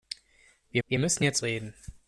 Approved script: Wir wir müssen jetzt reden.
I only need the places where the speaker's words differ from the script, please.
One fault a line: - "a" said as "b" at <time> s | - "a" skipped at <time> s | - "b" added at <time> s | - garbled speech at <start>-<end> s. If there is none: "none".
none